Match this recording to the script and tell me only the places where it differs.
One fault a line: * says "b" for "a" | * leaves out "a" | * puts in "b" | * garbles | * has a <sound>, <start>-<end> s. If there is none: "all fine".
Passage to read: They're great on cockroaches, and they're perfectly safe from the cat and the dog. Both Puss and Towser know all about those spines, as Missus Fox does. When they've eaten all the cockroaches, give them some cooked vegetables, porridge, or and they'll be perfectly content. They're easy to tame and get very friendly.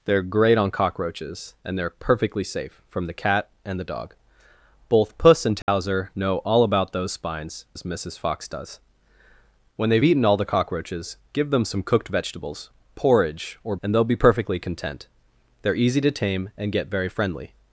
* has a dropout, 5.6-5.7 s